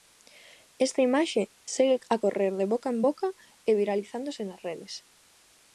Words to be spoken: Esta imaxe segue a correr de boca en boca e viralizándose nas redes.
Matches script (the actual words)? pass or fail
pass